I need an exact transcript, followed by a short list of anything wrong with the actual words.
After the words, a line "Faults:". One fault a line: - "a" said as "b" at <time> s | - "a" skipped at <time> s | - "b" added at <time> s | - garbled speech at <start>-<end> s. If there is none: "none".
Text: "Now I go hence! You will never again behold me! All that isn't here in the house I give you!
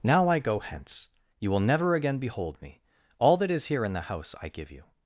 "Now I go hence! You will never again behold me! All that is here in the house I give you!
Faults:
- "isn't" said as "is" at 3.5 s